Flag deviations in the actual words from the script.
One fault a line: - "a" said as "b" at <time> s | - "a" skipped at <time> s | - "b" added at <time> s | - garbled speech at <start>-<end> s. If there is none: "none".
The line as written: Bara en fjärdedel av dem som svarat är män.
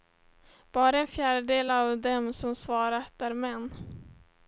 none